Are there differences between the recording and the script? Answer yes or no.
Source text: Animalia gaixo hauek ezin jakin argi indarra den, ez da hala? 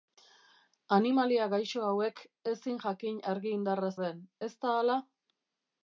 no